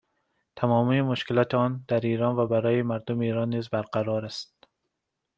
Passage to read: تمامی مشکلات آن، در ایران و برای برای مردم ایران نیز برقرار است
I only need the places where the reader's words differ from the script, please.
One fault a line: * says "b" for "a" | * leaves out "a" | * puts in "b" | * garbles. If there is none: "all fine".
* leaves out "برای"